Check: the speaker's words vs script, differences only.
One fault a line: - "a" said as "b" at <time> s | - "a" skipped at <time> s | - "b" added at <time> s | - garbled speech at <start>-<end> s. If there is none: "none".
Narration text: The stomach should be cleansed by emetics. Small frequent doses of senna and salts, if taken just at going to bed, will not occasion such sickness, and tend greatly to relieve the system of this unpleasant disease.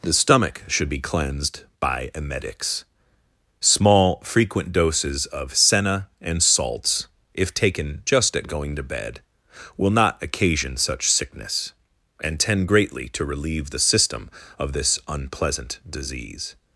none